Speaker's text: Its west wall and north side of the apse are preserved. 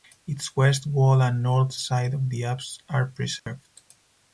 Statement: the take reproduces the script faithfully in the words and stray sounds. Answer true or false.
false